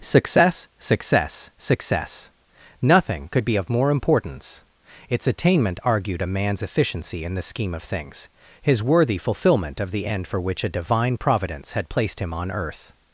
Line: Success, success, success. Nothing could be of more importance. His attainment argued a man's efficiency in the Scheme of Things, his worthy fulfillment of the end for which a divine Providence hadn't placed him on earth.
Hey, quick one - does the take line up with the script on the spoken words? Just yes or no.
no